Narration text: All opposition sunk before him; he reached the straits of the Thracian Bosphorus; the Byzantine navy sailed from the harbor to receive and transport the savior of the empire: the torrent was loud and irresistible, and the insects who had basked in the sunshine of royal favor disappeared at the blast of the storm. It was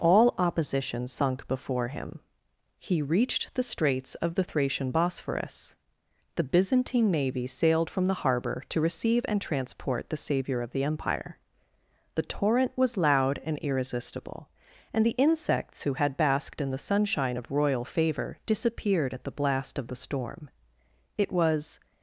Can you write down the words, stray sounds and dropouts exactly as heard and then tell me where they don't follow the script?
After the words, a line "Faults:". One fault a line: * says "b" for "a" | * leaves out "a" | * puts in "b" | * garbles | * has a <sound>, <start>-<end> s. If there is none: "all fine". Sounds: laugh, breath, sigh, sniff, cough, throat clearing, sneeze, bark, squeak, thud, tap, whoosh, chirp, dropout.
All opposition sunk before him; he reached the straits of the Thracian Bosphorus; the Byzantine navy sailed from the harbor to receive and transport the savior of the empire: the torrent was loud and irresistible, and the insects who had basked in the sunshine of royal favor disappeared at the blast of the storm. It was
Faults:
all fine